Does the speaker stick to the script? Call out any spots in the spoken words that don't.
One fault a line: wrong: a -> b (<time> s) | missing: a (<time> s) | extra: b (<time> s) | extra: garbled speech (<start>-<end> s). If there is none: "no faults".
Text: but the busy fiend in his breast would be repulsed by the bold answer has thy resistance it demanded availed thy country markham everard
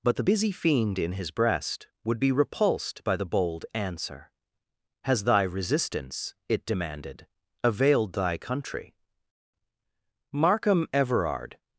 no faults